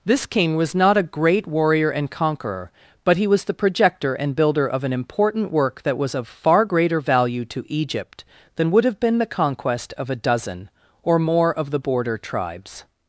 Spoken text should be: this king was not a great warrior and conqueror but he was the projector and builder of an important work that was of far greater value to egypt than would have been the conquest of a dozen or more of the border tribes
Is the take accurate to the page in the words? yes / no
yes